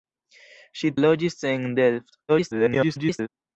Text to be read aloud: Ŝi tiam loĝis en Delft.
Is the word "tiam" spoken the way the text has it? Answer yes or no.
no